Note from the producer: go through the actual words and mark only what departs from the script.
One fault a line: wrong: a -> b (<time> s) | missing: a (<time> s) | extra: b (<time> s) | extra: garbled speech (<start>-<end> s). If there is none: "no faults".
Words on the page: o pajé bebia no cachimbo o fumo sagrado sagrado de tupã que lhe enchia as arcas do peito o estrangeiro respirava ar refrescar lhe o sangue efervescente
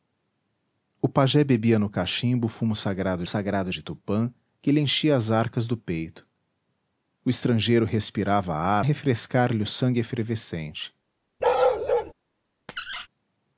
no faults